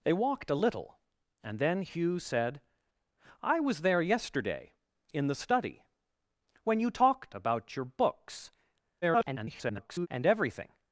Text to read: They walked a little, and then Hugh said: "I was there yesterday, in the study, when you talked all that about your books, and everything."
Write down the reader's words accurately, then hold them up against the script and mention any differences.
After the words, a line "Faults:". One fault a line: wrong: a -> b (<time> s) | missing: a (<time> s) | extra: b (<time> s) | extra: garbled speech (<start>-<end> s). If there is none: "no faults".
They walked a little, and then Hugh said: "I was there yesterday, in the study, when you talked about your books, [garbled] and everything."
Faults:
missing: all that (7.3 s)
extra: garbled speech (9.0-10.1 s)